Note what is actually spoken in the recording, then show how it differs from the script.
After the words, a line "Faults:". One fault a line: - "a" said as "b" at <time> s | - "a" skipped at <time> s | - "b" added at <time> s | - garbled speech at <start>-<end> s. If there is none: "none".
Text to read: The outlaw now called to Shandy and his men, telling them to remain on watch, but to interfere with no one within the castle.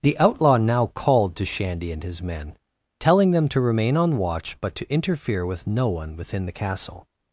The outlaw now called to Shandy and his men, telling them to remain on watch, but to interfere with no one within the castle.
Faults:
none